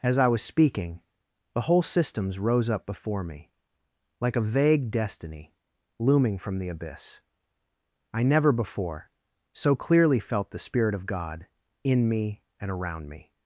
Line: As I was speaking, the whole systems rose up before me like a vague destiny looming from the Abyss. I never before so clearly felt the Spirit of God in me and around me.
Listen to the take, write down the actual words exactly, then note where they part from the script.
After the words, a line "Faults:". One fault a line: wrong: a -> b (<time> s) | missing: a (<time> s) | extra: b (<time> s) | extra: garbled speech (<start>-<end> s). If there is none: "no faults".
As I was speaking, the whole systems rose up before me like a vague destiny looming from the Abyss. I never before so clearly felt the Spirit of God in me and around me.
Faults:
no faults